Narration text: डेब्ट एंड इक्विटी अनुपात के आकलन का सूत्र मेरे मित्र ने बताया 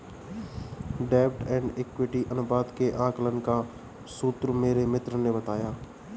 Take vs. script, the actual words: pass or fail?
pass